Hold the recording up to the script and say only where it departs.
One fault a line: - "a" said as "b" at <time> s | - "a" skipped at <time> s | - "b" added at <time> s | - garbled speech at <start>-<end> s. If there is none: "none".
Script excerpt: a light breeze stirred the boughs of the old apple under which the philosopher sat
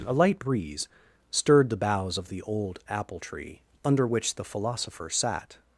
- "tree" added at 3.2 s